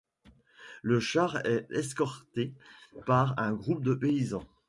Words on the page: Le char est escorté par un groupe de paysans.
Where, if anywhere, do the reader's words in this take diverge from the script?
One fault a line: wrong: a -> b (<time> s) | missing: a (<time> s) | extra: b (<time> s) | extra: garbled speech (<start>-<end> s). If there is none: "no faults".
no faults